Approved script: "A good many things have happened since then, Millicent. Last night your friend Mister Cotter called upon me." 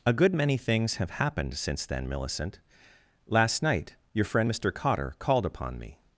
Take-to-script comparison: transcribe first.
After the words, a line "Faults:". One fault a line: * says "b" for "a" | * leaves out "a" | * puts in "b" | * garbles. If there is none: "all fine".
"A good many things have happened since then, Millicent. Last night your friend Mister Cotter called upon me."
Faults:
all fine